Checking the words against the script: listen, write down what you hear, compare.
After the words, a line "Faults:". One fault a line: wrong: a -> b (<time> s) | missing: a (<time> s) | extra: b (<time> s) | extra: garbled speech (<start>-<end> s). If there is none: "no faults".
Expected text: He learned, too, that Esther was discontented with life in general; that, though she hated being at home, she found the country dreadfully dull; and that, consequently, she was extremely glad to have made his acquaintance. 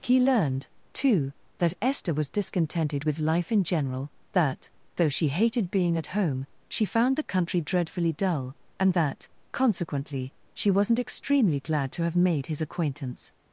He learned, too, that Esther was discontented with life in general; that, though she hated being at home, she found the country dreadfully dull; and that, consequently, she wasn't extremely glad to have made his acquaintance.
Faults:
wrong: was -> wasn't (10.7 s)